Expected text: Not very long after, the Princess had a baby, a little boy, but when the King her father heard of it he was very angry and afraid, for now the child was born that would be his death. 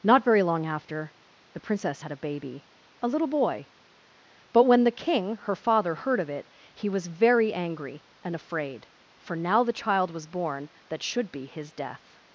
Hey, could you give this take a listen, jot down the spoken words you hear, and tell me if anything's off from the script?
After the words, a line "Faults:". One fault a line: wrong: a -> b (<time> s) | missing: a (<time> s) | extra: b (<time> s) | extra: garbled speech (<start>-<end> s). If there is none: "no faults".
Not very long after, the Princess had a baby, a little boy, but when the King her father heard of it he was very angry and afraid, for now the child was born that should be his death.
Faults:
wrong: would -> should (11.0 s)